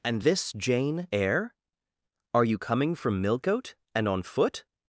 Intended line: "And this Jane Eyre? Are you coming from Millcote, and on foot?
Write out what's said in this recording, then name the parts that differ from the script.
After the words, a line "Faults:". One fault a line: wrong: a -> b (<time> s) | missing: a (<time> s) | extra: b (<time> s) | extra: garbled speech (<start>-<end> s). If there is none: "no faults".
"And this Jane Eyre? Are you coming from Millcote, and on foot?
Faults:
no faults